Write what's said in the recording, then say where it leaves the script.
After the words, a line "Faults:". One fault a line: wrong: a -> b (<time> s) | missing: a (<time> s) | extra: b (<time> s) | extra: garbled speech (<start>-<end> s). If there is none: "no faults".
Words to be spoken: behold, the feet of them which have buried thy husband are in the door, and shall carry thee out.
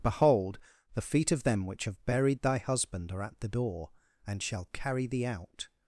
behold, the feet of them which have buried thy husband are at the door, and shall carry thee out.
Faults:
wrong: in -> at (3.2 s)